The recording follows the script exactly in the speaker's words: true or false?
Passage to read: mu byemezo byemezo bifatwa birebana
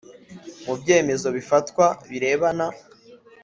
false